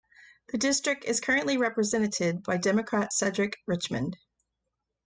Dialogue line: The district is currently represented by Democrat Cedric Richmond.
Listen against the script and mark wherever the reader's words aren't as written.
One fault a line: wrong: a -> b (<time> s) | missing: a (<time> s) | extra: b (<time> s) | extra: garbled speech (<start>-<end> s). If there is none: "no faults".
no faults